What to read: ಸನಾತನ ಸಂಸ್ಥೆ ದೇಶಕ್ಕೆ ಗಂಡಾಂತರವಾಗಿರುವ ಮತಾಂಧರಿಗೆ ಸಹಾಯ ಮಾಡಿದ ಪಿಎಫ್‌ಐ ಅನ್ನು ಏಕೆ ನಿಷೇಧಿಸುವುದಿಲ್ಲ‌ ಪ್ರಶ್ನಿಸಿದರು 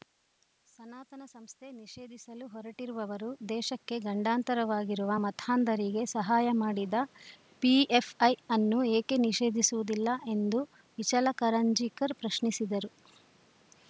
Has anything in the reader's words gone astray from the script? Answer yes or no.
yes